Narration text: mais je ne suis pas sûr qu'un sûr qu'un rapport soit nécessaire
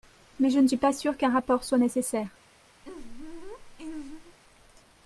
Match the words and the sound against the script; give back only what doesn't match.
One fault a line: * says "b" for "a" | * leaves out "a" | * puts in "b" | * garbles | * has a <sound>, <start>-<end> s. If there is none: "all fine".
* leaves out "sûr qu'un"
* has a laugh, 2.8-4.4 s